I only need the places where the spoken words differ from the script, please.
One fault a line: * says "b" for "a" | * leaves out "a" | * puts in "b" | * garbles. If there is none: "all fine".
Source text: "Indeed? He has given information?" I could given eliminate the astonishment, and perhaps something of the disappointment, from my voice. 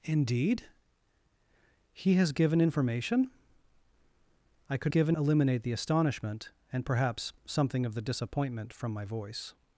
all fine